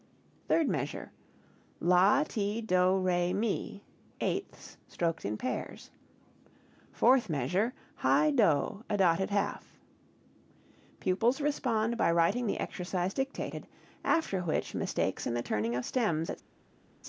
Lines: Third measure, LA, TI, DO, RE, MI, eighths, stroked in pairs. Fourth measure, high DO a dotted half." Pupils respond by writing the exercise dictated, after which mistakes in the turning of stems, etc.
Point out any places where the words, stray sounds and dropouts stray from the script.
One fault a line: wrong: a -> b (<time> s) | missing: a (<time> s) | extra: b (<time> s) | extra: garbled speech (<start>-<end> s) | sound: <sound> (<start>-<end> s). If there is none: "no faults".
no faults